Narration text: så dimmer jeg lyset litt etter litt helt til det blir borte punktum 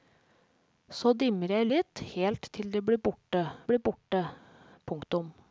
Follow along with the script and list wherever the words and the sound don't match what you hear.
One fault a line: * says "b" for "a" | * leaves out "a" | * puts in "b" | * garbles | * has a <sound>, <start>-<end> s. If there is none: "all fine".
* leaves out "lyset"
* leaves out "etter litt"
* puts in "blir borte"